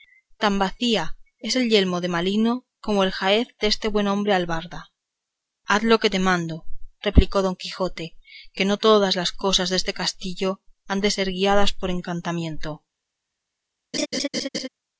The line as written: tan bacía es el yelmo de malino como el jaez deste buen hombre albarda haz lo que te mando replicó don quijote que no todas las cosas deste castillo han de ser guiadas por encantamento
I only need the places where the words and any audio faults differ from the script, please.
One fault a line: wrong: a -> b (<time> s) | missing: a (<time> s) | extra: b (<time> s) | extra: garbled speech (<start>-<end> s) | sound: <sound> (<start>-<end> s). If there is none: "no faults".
sound: laugh (13.9-14.7 s)